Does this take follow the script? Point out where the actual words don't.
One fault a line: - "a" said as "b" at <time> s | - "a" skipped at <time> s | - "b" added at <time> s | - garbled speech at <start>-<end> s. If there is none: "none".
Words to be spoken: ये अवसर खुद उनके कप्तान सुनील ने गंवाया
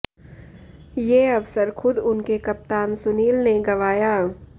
none